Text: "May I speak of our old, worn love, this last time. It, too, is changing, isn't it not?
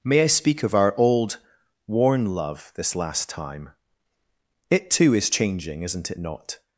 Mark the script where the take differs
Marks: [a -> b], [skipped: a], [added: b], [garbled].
"May I speak of our old, worn love, this last time. It, too, is changing, isn't it not?